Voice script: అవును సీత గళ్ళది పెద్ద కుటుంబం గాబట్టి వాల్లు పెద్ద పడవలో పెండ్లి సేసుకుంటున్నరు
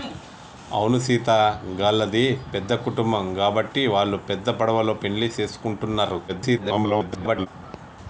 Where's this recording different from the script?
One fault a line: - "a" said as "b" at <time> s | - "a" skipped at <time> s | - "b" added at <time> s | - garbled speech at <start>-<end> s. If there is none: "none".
- garbled speech at 6.3-7.5 s